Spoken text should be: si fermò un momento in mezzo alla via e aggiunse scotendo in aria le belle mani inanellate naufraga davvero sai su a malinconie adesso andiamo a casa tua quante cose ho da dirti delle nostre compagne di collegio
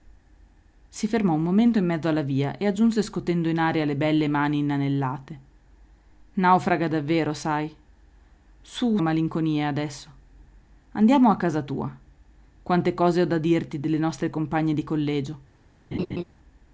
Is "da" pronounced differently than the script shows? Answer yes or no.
no